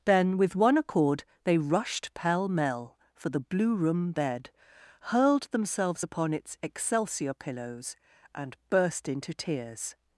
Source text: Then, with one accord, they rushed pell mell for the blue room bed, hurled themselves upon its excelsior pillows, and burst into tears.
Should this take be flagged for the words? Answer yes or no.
no